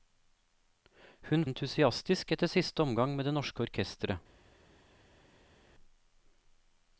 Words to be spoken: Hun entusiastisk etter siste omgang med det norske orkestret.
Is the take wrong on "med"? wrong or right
right